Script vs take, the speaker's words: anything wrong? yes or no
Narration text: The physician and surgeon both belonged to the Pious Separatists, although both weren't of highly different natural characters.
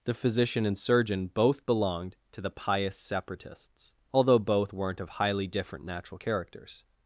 no